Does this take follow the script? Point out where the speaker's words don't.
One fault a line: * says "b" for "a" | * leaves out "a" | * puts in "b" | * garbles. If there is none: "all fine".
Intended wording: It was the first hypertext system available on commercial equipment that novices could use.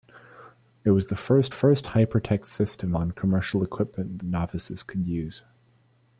* puts in "first"
* leaves out "available"
* leaves out "that"